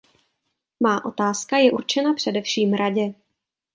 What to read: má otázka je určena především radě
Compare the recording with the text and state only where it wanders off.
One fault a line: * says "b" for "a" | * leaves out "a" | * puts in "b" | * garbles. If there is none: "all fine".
all fine